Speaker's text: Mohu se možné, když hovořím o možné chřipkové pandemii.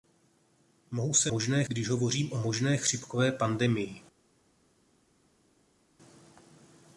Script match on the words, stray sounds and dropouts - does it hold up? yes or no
yes